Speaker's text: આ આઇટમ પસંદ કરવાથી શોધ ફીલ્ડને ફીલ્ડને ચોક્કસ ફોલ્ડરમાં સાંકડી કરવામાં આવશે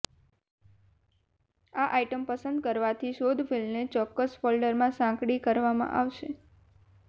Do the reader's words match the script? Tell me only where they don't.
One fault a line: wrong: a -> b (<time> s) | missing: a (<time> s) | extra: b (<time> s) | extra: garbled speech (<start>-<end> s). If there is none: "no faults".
missing: ફીલ્ડને (3.9 s)